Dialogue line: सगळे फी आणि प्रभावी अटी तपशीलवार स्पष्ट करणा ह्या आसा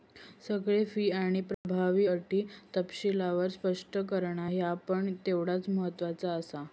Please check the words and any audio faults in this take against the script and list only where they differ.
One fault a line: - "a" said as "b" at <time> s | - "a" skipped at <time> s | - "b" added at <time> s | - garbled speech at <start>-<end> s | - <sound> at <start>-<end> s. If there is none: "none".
- dropout at 1.5-1.6 s
- "पण तेवढाच महत्त्वाचा" added at 4.9 s